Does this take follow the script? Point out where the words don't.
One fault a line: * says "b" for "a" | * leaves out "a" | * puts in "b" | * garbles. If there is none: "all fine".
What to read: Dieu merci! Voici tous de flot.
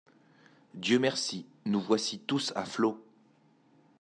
* puts in "Nous"
* says "à" for "de"